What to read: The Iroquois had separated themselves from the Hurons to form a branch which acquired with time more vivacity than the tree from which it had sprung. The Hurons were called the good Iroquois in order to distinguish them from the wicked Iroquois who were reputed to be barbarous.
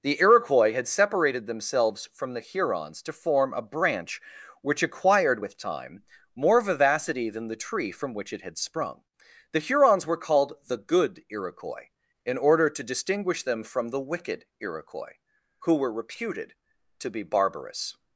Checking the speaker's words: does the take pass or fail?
pass